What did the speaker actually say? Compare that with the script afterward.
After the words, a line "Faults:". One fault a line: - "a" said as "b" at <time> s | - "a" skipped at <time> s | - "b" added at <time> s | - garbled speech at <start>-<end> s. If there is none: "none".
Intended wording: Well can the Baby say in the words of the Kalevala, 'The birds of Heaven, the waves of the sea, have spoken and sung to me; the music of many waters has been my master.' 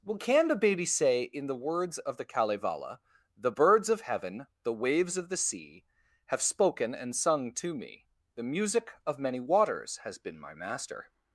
Well can the Baby say in the words of the Kalevala, 'The birds of Heaven, the waves of the sea, have spoken and sung to me; the music of many waters has been my master.'
Faults:
none